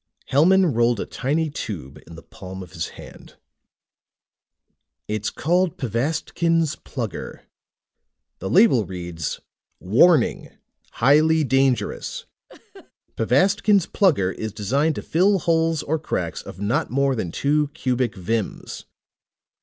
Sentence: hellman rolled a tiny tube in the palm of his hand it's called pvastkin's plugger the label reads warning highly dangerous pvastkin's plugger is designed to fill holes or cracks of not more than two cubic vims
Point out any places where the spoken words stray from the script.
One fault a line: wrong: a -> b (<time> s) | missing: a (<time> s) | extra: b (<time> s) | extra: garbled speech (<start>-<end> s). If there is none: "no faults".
no faults